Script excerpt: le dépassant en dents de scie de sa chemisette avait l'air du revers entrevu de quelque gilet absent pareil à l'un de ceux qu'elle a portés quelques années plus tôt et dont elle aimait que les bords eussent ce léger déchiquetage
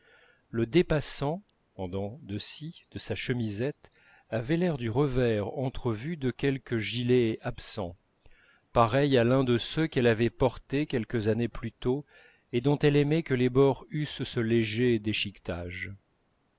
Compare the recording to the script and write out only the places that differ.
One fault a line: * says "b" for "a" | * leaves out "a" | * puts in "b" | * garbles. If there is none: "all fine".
* says "avait" for "a"